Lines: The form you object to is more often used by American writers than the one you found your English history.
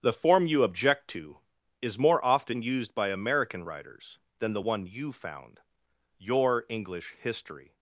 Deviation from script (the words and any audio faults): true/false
false